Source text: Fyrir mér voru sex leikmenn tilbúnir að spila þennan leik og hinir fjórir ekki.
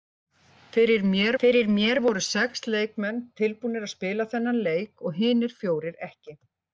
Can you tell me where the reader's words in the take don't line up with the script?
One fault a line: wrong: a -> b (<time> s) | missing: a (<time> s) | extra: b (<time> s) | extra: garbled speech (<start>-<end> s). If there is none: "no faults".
extra: fyrir mér (1.4 s)